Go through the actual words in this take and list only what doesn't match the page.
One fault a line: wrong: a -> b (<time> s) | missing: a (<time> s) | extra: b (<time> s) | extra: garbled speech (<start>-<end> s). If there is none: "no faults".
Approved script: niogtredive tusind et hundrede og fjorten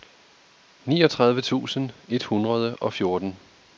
no faults